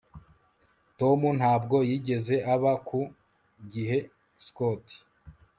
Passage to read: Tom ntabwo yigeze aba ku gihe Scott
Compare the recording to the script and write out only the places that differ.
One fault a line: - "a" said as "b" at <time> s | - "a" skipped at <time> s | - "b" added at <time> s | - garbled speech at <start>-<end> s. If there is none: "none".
none